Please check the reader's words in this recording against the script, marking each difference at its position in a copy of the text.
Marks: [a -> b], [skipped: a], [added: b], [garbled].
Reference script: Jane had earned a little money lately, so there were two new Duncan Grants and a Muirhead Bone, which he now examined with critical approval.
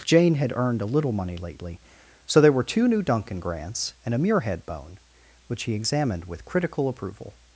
Jane had earned a little money lately, so there were two new Duncan Grants and a Muirhead Bone, which he [skipped: now] examined with critical approval.